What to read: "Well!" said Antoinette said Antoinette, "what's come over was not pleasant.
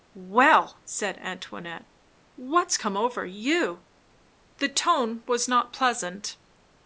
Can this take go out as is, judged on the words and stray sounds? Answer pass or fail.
fail